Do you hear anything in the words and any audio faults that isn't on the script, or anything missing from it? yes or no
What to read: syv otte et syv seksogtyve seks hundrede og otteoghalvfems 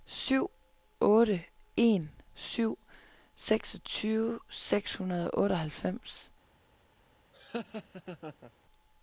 yes